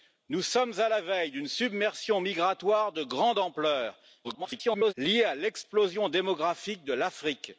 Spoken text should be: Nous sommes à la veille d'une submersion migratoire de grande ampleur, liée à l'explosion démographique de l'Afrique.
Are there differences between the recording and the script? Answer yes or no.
yes